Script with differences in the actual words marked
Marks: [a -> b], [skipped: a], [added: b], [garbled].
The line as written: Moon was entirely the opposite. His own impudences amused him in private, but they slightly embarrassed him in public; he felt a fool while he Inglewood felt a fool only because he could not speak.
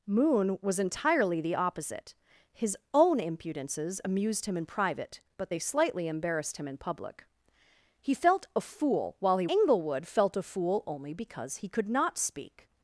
Moon was entirely the opposite. His own impudences amused him in private, but they slightly embarrassed him in public; he felt a fool while he Inglewood felt a fool only because he could not speak.